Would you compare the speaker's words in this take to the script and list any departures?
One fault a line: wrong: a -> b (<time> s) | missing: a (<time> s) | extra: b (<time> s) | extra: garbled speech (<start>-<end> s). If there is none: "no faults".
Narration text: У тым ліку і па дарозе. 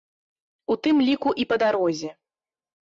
no faults